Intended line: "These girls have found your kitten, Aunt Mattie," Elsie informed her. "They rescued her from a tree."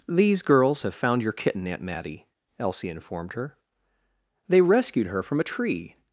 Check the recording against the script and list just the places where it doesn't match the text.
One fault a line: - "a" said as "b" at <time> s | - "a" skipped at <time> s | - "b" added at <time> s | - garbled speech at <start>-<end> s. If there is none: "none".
none